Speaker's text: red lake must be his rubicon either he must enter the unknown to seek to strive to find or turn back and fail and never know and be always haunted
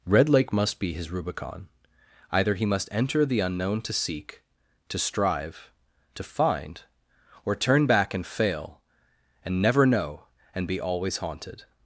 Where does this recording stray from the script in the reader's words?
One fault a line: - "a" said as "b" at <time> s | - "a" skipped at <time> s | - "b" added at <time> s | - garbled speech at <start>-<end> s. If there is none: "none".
none